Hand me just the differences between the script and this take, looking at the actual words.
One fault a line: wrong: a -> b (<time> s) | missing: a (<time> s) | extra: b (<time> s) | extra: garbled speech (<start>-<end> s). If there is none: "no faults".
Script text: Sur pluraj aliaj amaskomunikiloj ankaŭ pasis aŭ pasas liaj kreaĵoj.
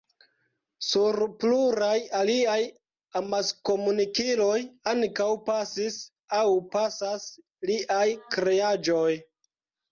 no faults